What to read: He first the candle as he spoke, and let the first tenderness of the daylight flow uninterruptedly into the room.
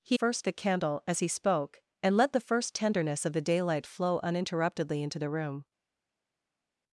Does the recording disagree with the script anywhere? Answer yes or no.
no